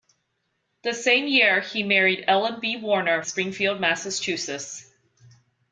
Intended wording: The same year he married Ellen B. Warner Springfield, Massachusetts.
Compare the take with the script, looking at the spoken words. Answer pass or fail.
pass